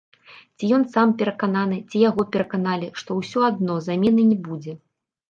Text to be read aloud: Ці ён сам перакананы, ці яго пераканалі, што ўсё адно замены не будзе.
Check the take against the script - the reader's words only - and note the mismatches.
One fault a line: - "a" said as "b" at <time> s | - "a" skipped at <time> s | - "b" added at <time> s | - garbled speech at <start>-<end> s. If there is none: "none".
none